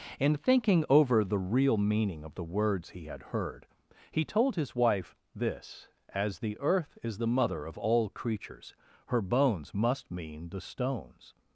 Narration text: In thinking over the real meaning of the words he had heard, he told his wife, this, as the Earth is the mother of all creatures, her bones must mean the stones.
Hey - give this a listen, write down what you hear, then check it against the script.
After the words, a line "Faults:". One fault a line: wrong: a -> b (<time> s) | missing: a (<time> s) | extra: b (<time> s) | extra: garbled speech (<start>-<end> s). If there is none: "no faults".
In thinking over the real meaning of the words he had heard, he told his wife, this, as the Earth is the mother of all creatures, her bones must mean the stones.
Faults:
no faults